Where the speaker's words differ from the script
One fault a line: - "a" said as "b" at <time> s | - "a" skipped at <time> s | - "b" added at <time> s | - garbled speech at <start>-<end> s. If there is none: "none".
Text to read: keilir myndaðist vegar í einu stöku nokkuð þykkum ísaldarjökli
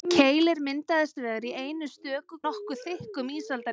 none